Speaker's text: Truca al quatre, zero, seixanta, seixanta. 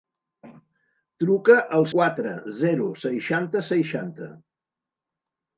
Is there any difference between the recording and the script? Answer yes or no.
no